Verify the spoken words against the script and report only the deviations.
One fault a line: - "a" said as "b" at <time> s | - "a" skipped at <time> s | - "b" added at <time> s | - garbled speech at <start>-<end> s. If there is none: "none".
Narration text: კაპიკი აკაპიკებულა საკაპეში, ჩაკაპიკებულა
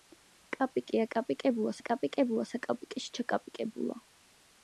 - "აკაპიკებულა" added at 1.8 s